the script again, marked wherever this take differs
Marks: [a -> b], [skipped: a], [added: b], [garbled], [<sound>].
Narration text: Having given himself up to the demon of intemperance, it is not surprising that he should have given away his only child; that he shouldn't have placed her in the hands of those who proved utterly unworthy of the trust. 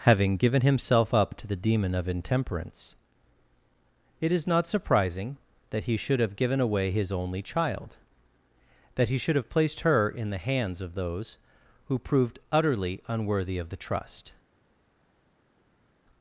Having given himself up to the demon of intemperance, it is not surprising that he should have given away his only child; that he [shouldn't -> should] have placed her in the hands of those who proved utterly unworthy of the trust.